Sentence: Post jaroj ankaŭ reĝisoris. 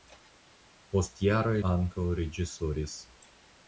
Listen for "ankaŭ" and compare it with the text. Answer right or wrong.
right